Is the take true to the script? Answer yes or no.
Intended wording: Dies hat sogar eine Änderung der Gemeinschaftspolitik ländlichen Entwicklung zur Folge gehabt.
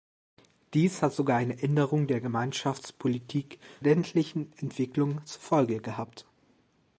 yes